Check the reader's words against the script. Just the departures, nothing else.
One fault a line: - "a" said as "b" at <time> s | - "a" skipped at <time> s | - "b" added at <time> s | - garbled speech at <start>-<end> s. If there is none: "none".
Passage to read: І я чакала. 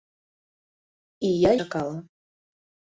none